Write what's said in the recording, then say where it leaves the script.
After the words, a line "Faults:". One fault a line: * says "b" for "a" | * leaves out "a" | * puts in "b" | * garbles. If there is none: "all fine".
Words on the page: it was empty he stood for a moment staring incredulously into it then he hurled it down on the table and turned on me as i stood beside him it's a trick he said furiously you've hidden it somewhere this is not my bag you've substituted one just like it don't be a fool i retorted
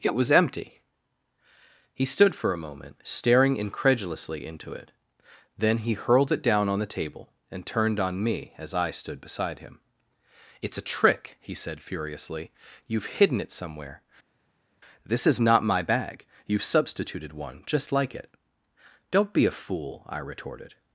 it was empty he stood for a moment staring incredulously into it then he hurled it down on the table and turned on me as i stood beside him it's a trick he said furiously you've hidden it somewhere this is not my bag you've substituted one just like it don't be a fool i retorted
Faults:
all fine